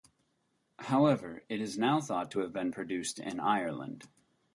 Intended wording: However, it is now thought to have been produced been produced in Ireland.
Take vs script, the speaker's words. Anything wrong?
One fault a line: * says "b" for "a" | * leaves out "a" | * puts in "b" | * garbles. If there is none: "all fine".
* leaves out "been produced"